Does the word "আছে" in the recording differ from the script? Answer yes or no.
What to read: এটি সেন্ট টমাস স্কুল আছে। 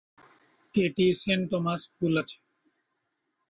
no